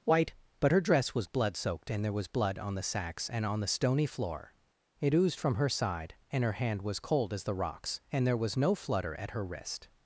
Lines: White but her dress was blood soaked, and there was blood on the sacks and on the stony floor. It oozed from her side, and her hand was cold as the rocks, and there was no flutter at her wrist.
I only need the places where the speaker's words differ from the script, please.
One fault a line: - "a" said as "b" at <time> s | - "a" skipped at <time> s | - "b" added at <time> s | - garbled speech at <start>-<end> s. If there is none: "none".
none